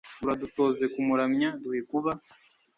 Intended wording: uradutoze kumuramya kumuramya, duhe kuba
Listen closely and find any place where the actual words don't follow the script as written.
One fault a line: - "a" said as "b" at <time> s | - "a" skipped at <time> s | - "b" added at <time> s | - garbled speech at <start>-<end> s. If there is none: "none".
- "kumuramya" skipped at 1.5 s